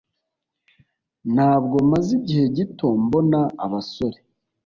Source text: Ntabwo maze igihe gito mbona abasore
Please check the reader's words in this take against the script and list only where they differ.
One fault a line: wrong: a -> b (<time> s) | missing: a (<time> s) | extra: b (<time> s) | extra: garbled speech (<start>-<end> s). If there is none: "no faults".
no faults